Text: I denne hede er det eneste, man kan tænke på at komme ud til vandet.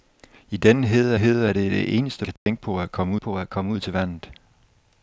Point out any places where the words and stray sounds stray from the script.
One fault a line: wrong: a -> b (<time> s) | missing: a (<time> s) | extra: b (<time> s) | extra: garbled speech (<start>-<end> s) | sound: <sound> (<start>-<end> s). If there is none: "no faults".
extra: hede (1.2 s)
missing: man (2.3 s)
sound: dropout (2.4-2.5 s)
extra: på at komme (3.2 s)